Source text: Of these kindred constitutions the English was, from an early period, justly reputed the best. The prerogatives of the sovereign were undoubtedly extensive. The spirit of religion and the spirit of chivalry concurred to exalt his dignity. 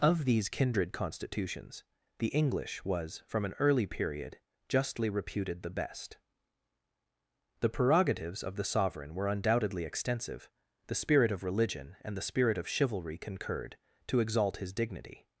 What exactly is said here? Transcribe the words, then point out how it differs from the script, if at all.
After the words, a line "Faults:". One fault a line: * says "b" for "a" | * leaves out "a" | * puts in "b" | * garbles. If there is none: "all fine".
Of these kindred constitutions the English was, from an early period, justly reputed the best. The prerogatives of the sovereign were undoubtedly extensive. The spirit of religion and the spirit of chivalry concurred to exalt his dignity.
Faults:
all fine